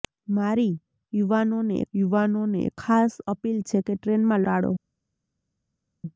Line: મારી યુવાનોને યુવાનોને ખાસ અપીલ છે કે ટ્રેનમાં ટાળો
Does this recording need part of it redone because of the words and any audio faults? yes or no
no